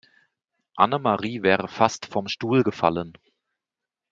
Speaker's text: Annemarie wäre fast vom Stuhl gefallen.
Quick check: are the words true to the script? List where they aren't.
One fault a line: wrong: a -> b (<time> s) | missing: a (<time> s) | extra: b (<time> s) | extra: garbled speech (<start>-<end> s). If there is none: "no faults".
no faults